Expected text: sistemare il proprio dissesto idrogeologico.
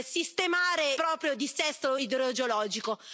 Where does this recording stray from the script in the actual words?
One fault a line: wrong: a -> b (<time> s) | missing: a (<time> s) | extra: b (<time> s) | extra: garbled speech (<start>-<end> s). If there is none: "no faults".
missing: il (0.9 s)